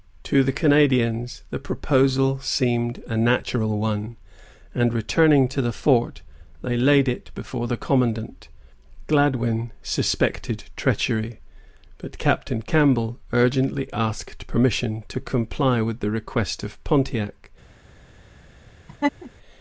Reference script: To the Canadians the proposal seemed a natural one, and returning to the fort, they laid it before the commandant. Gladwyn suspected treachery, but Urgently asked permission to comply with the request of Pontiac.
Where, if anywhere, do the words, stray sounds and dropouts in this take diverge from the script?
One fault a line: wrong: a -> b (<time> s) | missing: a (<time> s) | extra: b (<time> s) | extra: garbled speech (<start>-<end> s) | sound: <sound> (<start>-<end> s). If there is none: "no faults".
extra: Captain Campbell (12.2 s)
sound: laugh (18.9-19.3 s)